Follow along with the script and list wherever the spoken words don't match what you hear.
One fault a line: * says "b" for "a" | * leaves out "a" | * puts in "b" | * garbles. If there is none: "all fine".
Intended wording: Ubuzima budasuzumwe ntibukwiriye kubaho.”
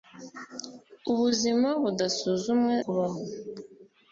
* leaves out "ntibukwiriye"